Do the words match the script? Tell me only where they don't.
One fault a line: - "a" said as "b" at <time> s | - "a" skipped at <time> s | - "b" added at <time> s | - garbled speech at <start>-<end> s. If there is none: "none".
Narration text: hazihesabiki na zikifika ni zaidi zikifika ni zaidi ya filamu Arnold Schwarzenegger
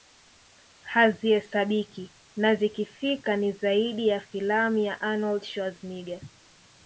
- "zikifika ni zaidi" said as "ya filamu" at 4.1 s
- "filamu" skipped at 5.0 s